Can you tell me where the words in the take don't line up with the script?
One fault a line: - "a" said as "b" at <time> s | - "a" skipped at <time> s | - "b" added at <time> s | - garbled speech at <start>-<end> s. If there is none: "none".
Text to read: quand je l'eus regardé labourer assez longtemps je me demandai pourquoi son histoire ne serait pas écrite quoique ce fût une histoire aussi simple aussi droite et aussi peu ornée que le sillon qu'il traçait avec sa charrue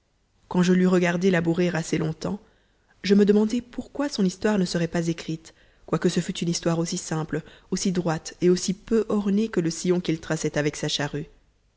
none